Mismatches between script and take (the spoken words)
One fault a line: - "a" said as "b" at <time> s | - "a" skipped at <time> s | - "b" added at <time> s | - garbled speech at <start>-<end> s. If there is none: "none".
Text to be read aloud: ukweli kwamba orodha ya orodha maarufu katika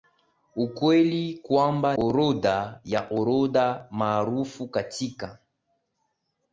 none